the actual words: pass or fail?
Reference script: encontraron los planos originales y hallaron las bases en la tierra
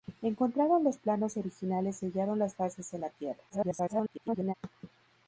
fail